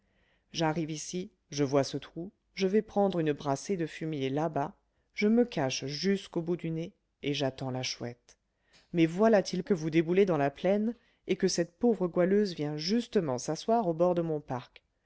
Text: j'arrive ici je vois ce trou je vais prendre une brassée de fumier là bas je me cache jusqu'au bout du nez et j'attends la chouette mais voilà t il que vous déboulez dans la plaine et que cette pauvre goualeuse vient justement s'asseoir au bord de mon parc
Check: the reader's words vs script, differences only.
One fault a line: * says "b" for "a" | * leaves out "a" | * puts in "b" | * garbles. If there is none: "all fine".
all fine